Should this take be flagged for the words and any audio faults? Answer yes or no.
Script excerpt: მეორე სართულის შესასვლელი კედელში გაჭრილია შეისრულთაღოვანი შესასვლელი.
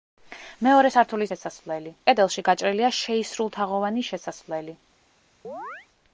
yes